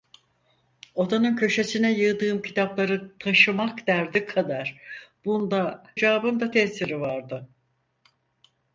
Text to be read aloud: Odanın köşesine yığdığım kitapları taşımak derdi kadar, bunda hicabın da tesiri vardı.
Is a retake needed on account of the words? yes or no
no